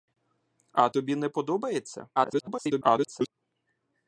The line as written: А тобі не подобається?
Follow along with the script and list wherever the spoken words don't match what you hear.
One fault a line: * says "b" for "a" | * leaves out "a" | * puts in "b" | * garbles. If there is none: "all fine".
* garbles